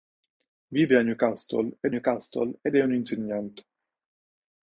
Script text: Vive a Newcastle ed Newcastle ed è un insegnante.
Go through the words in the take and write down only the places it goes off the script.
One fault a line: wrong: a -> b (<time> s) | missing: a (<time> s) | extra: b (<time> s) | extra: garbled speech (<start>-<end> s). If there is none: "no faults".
no faults